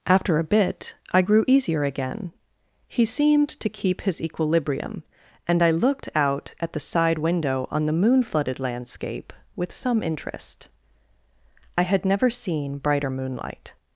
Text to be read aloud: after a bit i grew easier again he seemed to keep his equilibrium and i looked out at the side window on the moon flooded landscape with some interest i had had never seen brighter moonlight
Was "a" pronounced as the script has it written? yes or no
yes